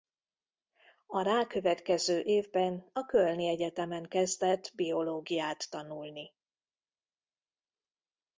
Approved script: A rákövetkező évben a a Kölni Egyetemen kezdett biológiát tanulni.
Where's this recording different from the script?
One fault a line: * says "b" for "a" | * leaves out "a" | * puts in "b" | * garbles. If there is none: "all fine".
* leaves out "a"